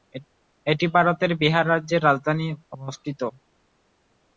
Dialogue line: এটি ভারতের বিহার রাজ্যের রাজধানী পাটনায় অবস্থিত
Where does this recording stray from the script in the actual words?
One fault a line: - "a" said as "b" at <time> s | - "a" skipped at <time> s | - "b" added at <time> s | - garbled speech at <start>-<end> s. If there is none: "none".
- "পাটনায়" skipped at 2.5 s